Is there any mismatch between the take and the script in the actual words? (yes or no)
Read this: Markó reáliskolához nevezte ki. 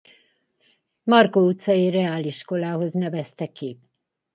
yes